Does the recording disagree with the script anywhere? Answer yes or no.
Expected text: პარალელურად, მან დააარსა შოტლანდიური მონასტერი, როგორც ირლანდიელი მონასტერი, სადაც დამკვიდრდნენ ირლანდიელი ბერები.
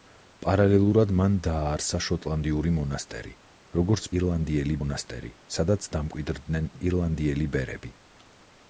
no